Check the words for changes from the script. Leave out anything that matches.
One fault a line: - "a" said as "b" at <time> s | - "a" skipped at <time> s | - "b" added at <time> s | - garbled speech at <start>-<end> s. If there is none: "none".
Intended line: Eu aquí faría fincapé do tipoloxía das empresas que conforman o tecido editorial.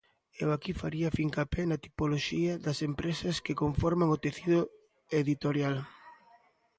- "do" said as "na" at 1.7 s